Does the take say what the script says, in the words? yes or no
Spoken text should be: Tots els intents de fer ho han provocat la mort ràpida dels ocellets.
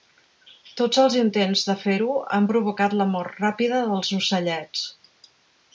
yes